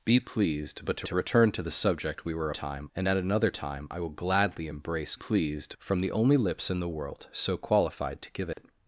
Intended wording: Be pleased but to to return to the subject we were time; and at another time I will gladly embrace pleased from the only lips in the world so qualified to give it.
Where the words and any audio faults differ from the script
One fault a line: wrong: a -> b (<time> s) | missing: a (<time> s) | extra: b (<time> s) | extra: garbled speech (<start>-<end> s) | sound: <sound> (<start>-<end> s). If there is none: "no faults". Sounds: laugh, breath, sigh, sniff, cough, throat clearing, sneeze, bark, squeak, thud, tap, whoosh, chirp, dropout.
sound: dropout (8.5-8.6 s)